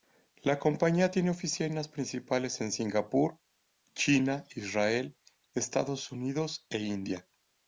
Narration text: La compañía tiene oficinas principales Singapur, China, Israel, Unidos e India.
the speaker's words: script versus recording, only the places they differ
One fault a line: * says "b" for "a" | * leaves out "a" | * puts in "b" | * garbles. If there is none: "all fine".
* puts in "en"
* puts in "Estados"